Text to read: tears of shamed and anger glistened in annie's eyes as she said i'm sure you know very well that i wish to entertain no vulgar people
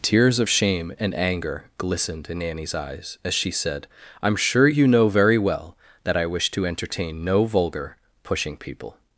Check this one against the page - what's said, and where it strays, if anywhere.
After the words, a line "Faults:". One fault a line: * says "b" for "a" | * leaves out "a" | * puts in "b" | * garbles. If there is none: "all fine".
tears of shame and anger glistened in annie's eyes as she said i'm sure you know very well that i wish to entertain no vulgar pushing people
Faults:
* says "shame" for "shamed"
* puts in "pushing"